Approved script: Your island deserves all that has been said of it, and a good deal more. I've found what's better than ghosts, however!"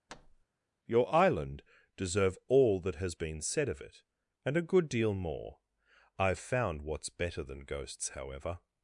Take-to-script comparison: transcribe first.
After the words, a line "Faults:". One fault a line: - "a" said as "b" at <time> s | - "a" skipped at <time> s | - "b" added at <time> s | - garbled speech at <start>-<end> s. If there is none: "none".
Your island deserve all that has been said of it, and a good deal more. I've found what's better than ghosts, however!"
Faults:
- "deserves" said as "deserve" at 2.0 s